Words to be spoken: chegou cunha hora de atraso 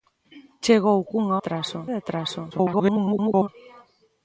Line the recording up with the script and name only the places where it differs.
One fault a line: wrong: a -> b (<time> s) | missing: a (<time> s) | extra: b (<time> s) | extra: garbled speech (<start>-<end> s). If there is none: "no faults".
wrong: hora -> atraso (1.4 s)
extra: garbled speech (2.5-3.5 s)